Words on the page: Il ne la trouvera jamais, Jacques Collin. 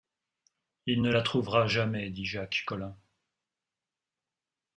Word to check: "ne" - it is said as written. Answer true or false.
true